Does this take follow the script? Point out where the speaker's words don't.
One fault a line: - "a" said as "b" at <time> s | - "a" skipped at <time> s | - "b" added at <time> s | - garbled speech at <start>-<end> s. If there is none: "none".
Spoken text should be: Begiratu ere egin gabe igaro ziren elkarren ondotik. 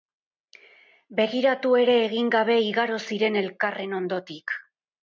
none